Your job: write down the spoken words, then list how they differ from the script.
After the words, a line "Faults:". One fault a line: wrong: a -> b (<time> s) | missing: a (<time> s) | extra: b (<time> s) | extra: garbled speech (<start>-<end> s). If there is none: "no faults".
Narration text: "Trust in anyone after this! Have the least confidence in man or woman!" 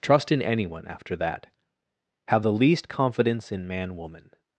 "Trust in anyone after that! Have the least confidence in man woman!"
Faults:
wrong: this -> that (1.2 s)
missing: or (4.0 s)